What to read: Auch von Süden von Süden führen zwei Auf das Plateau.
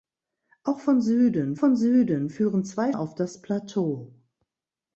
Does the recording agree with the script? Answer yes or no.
yes